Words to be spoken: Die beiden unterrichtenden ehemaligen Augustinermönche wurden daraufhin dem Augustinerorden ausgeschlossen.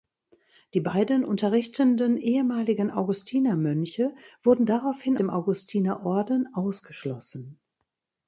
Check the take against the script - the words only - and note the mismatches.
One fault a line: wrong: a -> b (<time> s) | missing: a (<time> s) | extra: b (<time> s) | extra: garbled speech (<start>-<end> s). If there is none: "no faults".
no faults